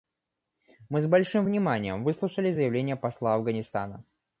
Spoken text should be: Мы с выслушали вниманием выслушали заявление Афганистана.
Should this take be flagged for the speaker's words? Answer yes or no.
yes